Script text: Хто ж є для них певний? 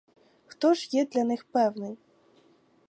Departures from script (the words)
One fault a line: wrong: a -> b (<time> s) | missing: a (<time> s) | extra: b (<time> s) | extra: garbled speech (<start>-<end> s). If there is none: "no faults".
no faults